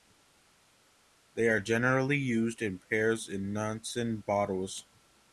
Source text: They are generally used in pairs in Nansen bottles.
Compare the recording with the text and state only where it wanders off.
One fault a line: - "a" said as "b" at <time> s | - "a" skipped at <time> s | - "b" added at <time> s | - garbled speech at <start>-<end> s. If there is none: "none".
none